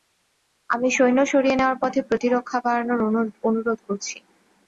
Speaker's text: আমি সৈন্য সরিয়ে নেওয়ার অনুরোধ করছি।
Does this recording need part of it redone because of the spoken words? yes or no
yes